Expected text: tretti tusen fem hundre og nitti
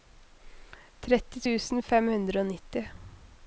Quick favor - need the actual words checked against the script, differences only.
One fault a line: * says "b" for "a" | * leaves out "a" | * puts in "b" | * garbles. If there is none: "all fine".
all fine